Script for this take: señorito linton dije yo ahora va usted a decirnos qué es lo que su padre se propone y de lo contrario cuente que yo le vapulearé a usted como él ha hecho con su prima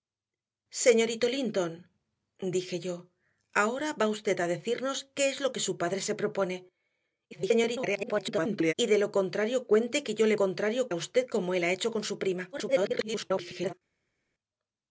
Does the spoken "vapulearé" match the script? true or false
false